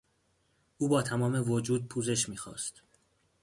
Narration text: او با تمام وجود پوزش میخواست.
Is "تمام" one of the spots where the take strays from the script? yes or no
no